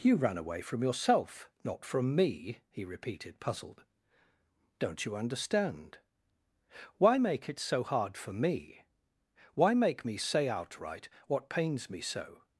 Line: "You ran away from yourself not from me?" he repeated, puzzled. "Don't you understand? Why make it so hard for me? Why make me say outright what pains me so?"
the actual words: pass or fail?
pass